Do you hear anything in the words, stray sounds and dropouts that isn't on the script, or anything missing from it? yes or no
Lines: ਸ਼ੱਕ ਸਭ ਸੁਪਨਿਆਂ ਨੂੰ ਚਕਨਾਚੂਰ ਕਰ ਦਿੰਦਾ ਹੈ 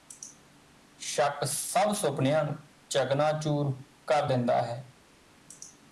no